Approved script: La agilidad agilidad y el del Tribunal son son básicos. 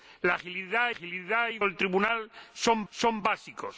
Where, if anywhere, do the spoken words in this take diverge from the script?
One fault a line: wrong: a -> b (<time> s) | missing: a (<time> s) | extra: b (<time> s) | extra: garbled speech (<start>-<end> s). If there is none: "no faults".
no faults